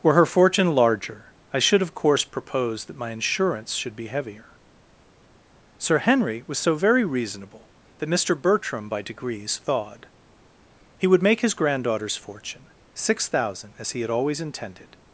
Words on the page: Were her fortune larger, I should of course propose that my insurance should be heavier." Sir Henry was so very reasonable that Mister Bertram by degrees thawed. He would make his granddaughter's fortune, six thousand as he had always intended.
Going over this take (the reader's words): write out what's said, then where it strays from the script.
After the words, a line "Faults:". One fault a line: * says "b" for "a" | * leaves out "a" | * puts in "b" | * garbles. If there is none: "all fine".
Were her fortune larger, I should of course propose that my insurance should be heavier." Sir Henry was so very reasonable that Mister Bertram by degrees thawed. He would make his granddaughter's fortune, six thousand as he had always intended.
Faults:
all fine